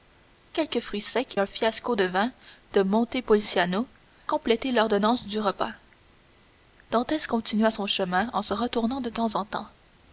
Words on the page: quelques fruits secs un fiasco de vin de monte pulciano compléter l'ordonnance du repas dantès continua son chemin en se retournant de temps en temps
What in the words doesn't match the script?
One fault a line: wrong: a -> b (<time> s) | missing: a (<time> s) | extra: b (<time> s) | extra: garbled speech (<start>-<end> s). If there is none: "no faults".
no faults